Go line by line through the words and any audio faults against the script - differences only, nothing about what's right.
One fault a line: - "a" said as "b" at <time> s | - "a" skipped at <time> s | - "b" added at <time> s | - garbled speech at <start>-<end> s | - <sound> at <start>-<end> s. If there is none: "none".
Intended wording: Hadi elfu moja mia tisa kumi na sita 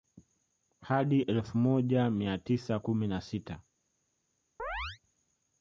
- chirp at 4.6-5.0 s